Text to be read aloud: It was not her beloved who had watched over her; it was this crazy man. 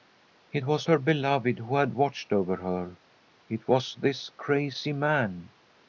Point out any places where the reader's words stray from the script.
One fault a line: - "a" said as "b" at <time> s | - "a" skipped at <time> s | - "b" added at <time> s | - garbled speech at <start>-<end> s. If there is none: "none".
- "not" skipped at 0.9 s